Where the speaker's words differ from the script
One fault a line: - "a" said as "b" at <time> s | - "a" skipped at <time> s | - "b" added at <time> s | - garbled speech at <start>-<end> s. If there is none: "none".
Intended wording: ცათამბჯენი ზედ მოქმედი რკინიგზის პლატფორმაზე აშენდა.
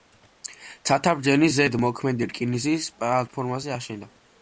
none